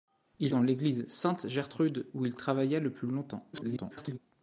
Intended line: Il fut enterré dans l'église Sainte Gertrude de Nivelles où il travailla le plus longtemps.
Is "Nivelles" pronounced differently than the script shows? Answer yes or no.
yes